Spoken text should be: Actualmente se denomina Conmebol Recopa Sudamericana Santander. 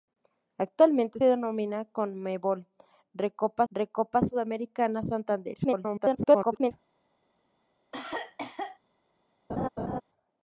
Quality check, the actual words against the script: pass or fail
fail